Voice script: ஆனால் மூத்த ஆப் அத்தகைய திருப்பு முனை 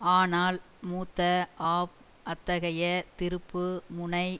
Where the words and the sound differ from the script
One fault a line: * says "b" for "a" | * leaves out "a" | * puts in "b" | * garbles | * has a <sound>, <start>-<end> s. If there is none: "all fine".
all fine